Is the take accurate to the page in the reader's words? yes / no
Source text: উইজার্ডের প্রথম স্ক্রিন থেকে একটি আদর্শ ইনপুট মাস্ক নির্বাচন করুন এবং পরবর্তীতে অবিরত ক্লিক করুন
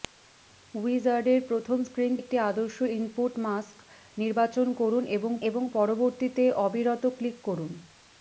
no